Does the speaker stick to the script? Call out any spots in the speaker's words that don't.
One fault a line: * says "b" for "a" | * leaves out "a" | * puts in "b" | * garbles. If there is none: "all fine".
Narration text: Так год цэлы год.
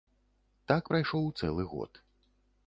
* says "прайшоў" for "год"